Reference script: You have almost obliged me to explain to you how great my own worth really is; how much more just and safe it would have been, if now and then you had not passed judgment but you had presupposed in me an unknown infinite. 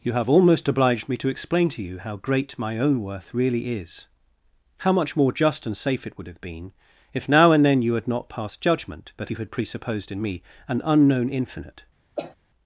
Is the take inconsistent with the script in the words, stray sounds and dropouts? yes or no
yes